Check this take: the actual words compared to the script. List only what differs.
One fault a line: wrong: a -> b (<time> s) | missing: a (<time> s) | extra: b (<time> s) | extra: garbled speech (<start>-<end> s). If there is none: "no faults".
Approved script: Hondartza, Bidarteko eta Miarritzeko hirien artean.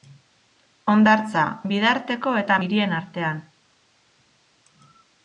missing: Miarritzeko (2.6 s)